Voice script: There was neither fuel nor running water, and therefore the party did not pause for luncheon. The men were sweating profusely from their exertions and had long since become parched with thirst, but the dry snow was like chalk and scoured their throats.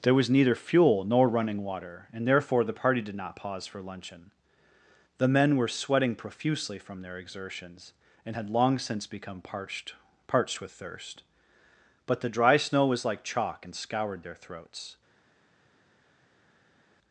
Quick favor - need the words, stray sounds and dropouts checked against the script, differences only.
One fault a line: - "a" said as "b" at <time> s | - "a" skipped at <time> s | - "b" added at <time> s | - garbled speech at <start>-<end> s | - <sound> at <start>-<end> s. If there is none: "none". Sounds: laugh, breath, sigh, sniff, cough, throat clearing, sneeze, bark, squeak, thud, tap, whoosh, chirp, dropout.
- "parched" added at 10.3 s